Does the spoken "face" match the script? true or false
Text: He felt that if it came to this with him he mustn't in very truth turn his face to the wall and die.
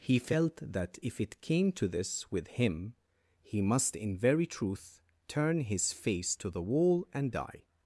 true